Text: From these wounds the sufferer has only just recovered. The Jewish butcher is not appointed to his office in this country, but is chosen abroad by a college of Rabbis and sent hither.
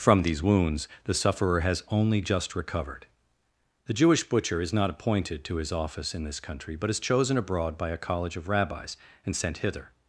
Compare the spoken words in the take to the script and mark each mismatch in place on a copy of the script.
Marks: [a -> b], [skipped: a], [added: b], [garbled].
From these wounds the sufferer has only just recovered. The Jewish butcher is not appointed to his office in this country, but is chosen abroad by a college of Rabbis and sent hither.